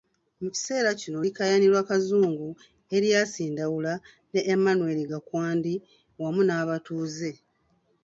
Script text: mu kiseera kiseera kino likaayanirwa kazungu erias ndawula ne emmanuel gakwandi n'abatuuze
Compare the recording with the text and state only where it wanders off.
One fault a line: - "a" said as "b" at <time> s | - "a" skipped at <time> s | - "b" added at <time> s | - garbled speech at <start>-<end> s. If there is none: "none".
- "kiseera" skipped at 0.9 s
- "wamu" added at 6.2 s